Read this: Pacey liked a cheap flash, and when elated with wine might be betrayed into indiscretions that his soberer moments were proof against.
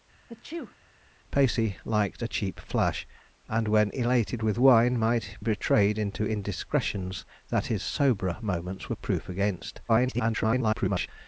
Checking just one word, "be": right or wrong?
wrong